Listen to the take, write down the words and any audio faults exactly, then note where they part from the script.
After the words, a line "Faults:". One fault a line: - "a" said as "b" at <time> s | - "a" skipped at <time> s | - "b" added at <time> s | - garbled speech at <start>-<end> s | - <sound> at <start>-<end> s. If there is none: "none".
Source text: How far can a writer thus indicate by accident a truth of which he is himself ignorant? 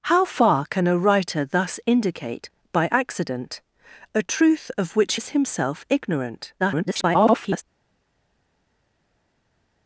How far can a writer thus indicate by accident a truth of which is himself ignorant? [garbled]
Faults:
- "he" skipped at 5.2 s
- garbled speech at 6.6-7.6 s